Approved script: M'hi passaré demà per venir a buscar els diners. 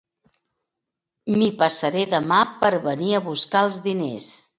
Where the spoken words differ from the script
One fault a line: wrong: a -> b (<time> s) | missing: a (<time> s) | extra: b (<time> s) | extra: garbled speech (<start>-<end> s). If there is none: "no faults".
no faults